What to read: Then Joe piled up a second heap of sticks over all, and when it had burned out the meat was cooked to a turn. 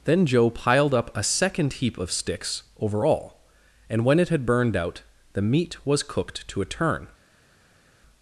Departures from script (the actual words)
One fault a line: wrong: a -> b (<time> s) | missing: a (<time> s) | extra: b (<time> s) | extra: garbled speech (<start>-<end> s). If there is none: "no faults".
no faults